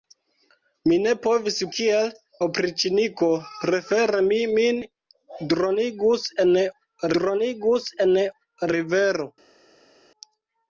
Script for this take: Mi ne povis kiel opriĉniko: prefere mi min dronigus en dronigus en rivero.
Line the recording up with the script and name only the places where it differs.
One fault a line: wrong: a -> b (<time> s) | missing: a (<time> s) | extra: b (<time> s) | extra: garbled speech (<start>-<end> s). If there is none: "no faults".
no faults